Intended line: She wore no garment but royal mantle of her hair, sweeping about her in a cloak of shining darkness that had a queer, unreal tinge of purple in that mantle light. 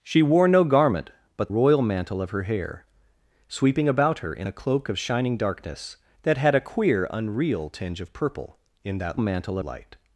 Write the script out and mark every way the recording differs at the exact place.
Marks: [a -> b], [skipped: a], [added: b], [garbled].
She wore no garment but royal mantle of her hair, sweeping about her in a cloak of shining darkness that had a queer, unreal tinge of purple in that mantle light.